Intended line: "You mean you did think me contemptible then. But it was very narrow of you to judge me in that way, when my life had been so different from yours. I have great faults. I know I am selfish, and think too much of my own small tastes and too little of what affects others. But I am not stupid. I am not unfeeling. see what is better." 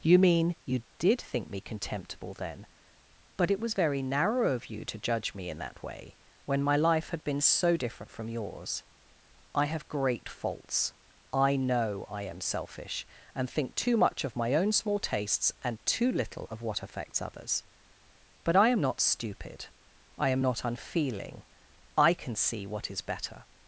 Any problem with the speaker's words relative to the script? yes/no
yes